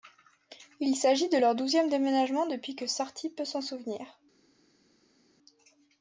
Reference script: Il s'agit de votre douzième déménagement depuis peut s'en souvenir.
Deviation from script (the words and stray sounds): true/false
true